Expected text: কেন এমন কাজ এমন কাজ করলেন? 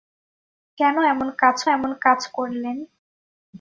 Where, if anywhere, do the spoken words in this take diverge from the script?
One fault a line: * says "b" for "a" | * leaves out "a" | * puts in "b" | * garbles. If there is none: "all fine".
all fine